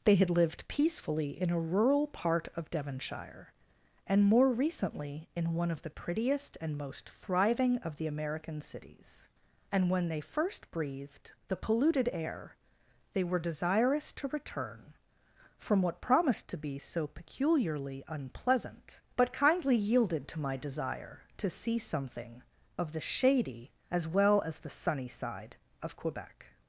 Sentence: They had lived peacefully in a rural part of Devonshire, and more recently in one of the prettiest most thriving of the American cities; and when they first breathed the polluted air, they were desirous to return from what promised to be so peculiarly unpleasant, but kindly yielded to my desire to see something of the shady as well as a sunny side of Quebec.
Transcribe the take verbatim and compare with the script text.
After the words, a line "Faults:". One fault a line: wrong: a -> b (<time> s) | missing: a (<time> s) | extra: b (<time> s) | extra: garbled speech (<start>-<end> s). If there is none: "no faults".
They had lived peacefully in a rural part of Devonshire, and more recently in one of the prettiest and most thriving of the American cities; and when they first breathed the polluted air, they were desirous to return from what promised to be so peculiarly unpleasant, but kindly yielded to my desire to see something of the shady as well as the sunny side of Quebec.
Faults:
extra: and (6.6 s)
wrong: a -> the (24.6 s)